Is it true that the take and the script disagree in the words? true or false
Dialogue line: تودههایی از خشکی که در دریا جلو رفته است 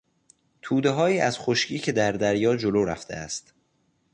false